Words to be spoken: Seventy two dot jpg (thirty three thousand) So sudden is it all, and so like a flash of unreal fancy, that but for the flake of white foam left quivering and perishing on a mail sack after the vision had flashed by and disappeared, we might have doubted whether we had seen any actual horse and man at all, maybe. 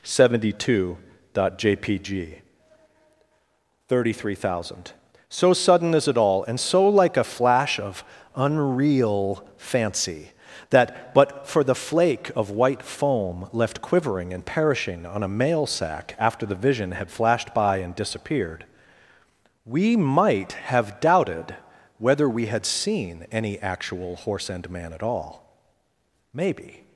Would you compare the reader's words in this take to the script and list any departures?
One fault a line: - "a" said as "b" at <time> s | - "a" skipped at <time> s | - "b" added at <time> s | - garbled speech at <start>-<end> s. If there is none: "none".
none